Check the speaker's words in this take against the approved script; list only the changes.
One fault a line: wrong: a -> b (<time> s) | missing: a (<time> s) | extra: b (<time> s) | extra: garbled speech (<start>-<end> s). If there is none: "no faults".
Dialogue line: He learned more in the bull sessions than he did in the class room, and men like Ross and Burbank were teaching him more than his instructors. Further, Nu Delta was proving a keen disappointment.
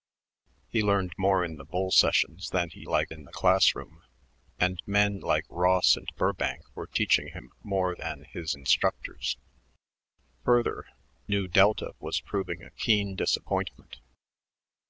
wrong: did -> like (2.8 s)